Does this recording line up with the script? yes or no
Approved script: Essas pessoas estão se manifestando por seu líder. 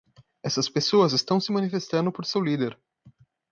yes